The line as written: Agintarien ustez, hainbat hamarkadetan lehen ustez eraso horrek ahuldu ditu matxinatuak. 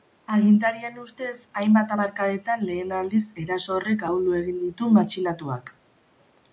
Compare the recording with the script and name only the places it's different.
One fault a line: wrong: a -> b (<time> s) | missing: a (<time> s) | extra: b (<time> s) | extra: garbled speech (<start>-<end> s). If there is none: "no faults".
wrong: ustez -> aldiz (3.0 s)
extra: egin (4.4 s)